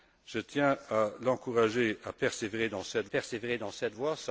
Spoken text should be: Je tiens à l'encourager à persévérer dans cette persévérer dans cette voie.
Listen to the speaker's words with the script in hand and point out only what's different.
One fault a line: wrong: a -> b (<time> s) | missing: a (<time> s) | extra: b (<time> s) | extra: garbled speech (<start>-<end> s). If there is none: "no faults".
no faults